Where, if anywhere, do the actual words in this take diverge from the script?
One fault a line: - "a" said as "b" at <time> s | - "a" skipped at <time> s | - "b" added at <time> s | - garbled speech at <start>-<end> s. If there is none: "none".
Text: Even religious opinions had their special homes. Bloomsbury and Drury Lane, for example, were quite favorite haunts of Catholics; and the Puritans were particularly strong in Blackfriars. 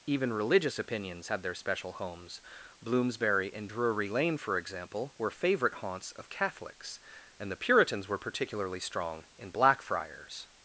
- "quite" skipped at 5.3 s